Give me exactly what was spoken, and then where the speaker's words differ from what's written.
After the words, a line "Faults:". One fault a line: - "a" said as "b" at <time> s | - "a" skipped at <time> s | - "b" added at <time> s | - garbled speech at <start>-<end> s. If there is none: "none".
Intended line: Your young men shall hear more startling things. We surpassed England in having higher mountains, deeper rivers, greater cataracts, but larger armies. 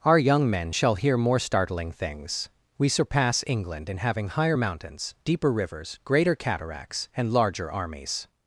Our young men shall hear more startling things. We surpass England in having higher mountains, deeper rivers, greater cataracts, and larger armies.
Faults:
- "Your" said as "Our" at 0.0 s
- "surpassed" said as "surpass" at 2.9 s
- "but" said as "and" at 7.2 s